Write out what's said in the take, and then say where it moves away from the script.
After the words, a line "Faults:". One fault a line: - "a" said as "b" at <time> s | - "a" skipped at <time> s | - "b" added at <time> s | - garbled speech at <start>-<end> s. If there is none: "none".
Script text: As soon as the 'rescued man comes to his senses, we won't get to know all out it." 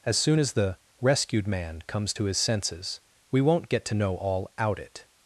As soon as the 'rescued man comes to his senses, we won't get to know all out it."
Faults:
none